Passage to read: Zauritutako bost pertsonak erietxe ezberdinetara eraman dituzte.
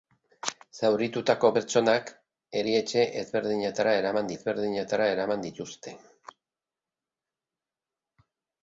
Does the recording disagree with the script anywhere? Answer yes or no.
yes